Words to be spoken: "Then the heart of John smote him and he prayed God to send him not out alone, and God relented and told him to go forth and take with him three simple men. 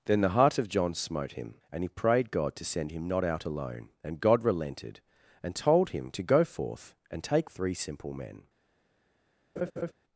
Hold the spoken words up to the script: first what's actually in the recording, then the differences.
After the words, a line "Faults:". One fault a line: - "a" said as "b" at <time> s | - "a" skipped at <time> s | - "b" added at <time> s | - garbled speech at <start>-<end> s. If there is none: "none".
"Then the heart of John smote him and he prayed God to send him not out alone, and God relented and told him to go forth and take three simple men.
Faults:
- "with him" skipped at 7.5 s